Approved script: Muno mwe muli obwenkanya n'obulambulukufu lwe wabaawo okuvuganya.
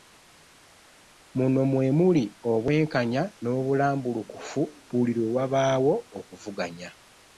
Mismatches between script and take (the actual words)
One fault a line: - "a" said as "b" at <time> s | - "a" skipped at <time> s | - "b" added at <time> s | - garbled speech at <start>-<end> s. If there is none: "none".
- "buli" added at 4.9 s